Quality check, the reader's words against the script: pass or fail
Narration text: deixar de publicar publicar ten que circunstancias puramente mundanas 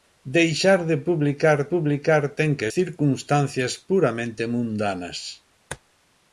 pass